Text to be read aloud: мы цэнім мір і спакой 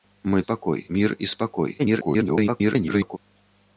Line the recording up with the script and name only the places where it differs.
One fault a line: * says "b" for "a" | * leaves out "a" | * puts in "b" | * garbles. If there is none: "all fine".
* says "спакой" for "цэнім"
* garbles